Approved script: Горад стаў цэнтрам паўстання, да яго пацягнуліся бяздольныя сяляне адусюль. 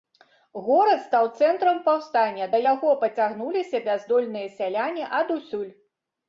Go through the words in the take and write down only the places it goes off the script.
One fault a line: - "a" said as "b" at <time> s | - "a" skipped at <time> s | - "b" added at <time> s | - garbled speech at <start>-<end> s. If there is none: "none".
none